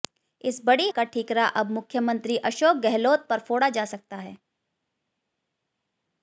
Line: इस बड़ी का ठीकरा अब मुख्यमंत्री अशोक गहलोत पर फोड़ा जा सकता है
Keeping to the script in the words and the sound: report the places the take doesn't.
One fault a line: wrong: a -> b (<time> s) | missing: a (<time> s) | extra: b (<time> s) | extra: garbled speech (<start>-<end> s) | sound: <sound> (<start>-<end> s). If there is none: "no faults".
no faults